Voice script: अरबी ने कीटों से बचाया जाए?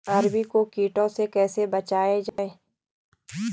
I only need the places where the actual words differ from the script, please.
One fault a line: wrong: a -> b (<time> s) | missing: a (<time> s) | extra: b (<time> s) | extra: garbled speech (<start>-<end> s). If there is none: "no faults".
wrong: ने -> को (0.5 s)
extra: कैसे (1.3 s)